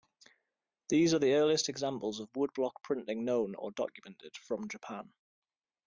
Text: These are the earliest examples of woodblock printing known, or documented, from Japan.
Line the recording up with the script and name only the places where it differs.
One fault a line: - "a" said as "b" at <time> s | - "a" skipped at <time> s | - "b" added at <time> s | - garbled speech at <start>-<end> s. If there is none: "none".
none